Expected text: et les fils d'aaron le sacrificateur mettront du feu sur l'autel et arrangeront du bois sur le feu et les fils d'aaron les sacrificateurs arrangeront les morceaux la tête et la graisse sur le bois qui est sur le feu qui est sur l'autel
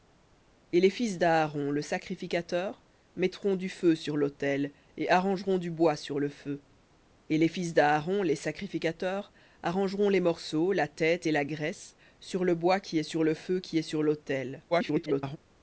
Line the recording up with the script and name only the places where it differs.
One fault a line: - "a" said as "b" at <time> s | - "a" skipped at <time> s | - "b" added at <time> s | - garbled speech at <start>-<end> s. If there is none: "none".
- garbled speech at 14.7-15.4 s